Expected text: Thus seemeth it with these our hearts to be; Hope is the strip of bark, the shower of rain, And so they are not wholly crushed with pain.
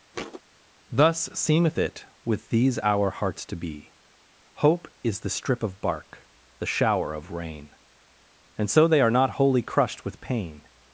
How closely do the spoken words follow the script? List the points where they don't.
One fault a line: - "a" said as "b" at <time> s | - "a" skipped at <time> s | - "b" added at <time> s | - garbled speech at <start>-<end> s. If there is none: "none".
none